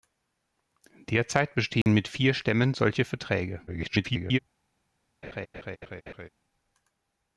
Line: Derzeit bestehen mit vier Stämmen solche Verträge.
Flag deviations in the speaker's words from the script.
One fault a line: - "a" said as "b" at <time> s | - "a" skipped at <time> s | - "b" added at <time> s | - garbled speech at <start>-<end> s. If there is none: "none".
- garbled speech at 3.7-4.4 s